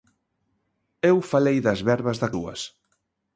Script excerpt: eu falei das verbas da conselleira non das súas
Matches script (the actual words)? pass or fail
fail